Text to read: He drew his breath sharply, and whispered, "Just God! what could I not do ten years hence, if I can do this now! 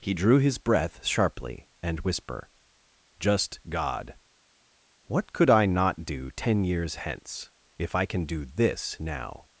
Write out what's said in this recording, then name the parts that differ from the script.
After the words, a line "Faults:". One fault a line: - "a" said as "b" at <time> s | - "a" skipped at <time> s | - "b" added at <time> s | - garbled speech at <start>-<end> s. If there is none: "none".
He drew his breath sharply, and whisper, "Just God! what could I not do ten years hence, if I can do this now!
Faults:
- "whispered" said as "whisper" at 2.0 s